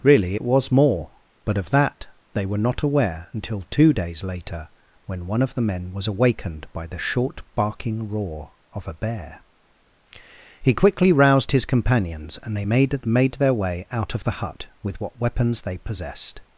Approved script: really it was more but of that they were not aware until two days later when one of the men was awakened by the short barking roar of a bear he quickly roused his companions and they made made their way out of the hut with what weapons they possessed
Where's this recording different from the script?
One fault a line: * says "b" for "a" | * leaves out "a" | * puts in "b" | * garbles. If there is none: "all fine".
all fine